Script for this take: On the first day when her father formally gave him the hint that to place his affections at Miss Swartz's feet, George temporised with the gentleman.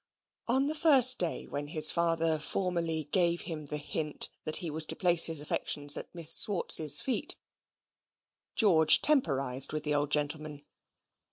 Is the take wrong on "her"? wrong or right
wrong